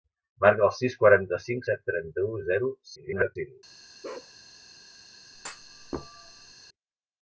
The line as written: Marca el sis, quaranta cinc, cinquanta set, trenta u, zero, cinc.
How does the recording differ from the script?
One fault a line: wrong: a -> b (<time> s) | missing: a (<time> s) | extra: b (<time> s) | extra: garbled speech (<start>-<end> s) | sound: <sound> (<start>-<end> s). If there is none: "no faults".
missing: cinquanta (1.7 s)
extra: garbled speech (3.0-3.4 s)
sound: bark (4.0-4.3 s)
sound: thud (5.3-6.5 s)